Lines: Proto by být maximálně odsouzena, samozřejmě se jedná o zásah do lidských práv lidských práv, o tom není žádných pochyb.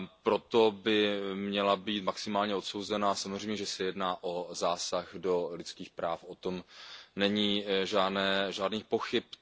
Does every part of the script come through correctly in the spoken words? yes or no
no